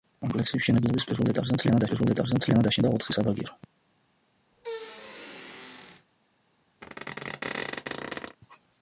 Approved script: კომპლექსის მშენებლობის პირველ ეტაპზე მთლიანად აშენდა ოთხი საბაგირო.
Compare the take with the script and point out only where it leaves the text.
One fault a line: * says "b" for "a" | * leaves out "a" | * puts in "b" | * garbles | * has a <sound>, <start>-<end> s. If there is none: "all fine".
* puts in "პირველ ეტაპზე მთლიანად"
* has a squeak, 4.5-6.1 s
* has a squeak, 6.8-8.4 s